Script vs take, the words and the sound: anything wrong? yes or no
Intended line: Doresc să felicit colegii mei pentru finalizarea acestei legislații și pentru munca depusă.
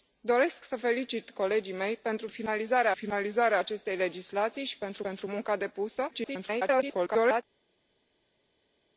yes